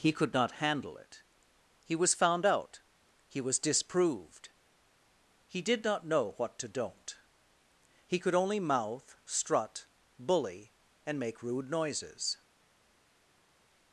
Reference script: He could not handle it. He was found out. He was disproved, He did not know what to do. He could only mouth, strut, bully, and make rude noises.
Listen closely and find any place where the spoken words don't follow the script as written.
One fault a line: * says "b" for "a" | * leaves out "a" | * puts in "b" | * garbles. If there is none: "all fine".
* says "don't" for "do"